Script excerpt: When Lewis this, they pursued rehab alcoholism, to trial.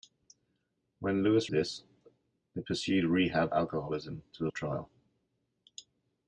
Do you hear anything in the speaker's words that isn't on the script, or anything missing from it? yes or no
no